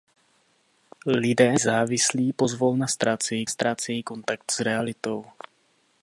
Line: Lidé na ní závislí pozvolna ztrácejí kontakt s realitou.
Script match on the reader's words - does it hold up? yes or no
no